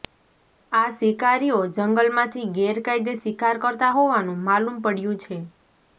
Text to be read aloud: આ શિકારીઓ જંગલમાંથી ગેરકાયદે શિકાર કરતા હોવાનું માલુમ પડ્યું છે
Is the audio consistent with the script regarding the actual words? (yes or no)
yes